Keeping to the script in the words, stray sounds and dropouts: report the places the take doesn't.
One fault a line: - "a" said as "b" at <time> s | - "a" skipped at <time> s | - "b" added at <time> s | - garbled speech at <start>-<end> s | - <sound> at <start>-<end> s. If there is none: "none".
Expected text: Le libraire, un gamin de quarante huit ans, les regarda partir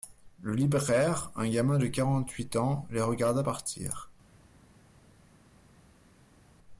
none